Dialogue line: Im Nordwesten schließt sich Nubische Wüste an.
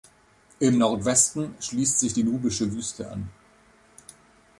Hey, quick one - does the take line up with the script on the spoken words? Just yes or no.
no